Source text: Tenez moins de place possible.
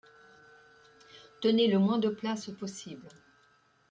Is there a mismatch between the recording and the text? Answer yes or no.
yes